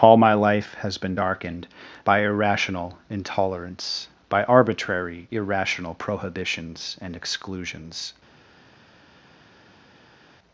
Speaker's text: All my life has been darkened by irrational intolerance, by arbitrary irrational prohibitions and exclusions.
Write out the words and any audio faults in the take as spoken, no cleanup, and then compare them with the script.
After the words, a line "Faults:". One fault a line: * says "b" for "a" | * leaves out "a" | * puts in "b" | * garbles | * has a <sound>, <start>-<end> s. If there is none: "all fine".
All my life has been darkened by irrational intolerance, by arbitrary irrational prohibitions and exclusions.
Faults:
all fine